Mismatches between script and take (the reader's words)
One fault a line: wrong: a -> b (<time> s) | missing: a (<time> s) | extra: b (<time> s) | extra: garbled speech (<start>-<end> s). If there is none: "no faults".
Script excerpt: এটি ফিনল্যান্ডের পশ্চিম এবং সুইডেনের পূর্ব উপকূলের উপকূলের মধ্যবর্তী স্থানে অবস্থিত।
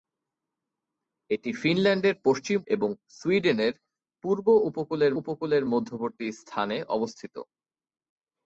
no faults